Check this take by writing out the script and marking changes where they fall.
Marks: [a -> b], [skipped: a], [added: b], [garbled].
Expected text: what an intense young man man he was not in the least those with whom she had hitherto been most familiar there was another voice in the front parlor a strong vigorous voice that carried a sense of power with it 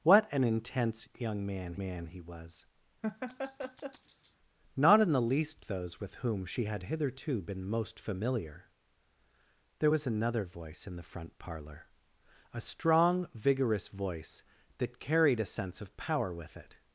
what an intense young man man he was not in the least those with whom she had hitherto been most familiar there was another voice in the front parlor a strong vigorous voice that carried a sense of power with it